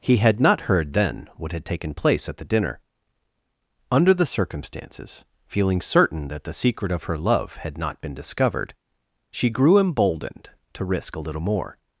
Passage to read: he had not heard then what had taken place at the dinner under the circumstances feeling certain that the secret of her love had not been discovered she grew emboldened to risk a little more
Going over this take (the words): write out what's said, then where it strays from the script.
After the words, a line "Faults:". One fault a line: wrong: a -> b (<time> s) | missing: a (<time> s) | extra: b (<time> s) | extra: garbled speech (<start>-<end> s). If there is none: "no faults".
he had not heard then what had taken place at the dinner under the circumstances feeling certain that the secret of her love had not been discovered she grew emboldened to risk a little more
Faults:
no faults